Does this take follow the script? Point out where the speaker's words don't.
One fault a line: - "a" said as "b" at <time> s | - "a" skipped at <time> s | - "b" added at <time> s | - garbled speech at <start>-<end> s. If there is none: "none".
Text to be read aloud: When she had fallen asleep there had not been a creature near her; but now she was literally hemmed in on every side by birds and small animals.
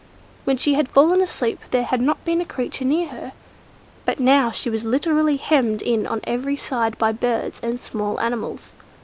none